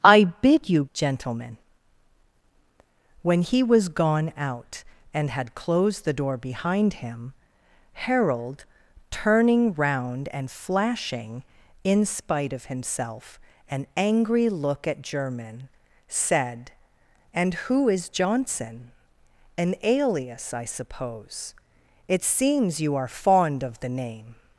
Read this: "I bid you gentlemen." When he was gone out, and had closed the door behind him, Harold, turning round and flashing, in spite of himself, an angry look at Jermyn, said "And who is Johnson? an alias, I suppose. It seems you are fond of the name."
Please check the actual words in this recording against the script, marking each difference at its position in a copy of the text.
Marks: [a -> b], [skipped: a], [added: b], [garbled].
"I bid you gentlemen." When he was gone out, and had closed the door behind him, Harold, turning round and flashing, in spite of himself, an angry look at Jermyn, said "And who is Johnson? an alias, I suppose. It seems you are fond of the name."